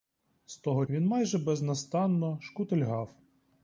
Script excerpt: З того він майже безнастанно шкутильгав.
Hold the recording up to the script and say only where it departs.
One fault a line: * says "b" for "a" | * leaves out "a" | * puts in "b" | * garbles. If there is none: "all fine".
all fine